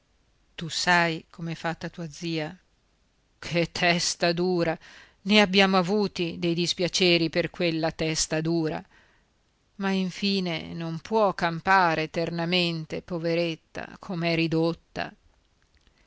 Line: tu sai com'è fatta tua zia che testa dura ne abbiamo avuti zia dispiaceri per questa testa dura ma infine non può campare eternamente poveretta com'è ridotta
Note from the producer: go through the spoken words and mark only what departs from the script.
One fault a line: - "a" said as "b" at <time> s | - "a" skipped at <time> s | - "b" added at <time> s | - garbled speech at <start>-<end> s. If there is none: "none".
- "zia" said as "dei" at 6.4 s
- "questa" said as "quella" at 7.5 s